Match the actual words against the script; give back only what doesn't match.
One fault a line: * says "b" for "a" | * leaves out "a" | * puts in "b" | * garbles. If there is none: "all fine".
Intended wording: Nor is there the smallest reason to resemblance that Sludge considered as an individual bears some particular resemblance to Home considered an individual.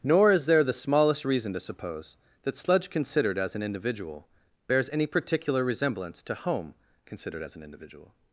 * says "suppose" for "resemblance"
* says "any" for "some"
* puts in "as"